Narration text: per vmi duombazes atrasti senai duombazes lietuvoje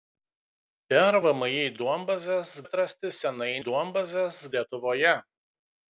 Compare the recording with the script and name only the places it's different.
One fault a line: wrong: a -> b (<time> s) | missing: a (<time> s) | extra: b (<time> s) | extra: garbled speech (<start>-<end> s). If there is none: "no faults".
no faults